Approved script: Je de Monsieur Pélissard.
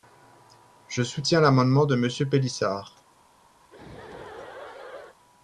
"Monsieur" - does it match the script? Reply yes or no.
yes